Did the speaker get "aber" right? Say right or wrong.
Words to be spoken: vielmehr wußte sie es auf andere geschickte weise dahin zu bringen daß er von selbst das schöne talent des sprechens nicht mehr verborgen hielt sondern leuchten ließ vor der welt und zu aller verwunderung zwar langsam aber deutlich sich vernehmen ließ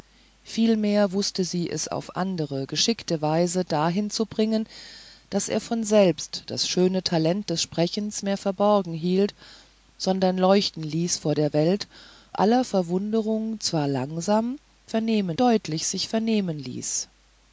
wrong